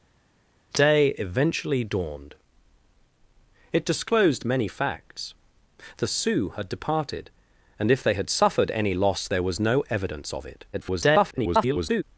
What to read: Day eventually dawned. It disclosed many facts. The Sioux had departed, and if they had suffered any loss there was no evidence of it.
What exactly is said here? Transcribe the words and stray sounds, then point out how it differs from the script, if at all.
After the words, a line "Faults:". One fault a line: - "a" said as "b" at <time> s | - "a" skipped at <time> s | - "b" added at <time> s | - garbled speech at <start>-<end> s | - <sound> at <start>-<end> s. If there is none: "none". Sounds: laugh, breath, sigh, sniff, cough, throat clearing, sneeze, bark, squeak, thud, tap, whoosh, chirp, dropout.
Day eventually dawned. It disclosed many facts. The Sioux had departed, and if they had suffered any loss there was no evidence of it. [garbled]
Faults:
- garbled speech at 10.7-12.0 s